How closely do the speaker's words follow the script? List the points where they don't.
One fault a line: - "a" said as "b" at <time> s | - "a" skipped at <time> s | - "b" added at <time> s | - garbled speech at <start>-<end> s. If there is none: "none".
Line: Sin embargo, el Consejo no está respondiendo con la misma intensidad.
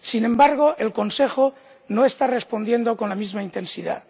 none